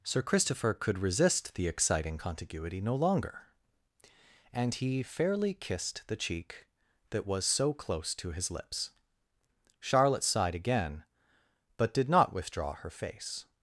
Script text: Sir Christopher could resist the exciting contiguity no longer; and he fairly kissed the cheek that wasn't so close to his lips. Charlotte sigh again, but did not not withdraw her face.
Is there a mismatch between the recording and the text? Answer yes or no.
yes